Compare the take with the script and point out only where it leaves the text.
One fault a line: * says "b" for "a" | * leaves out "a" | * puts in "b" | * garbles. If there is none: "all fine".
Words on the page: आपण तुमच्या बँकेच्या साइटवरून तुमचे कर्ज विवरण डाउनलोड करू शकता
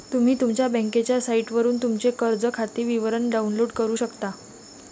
* says "तुम्ही" for "आपण"
* puts in "खाते"